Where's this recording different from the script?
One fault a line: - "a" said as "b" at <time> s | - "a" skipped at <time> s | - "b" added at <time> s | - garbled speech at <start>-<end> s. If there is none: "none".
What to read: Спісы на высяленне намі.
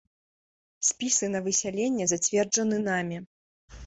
- "зацверджаны" added at 2.1 s